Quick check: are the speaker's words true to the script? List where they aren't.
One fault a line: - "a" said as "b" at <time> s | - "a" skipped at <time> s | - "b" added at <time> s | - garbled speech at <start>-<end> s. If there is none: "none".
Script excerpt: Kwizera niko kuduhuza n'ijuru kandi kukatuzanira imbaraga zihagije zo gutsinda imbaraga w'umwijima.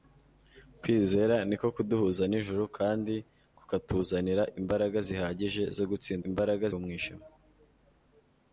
none